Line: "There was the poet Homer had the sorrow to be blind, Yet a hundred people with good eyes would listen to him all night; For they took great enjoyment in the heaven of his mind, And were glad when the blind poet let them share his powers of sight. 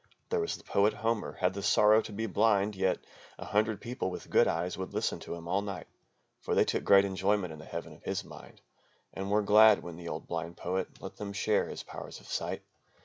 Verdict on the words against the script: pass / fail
fail